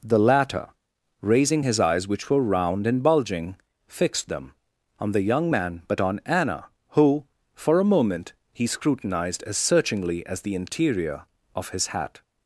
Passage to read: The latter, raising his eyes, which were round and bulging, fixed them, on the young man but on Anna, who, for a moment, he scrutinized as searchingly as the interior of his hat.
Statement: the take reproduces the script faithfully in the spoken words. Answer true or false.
true